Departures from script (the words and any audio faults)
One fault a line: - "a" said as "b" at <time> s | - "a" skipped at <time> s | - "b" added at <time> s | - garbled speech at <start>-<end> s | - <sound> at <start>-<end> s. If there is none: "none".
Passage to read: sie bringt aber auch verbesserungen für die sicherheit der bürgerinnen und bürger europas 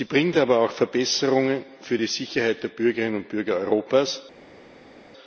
none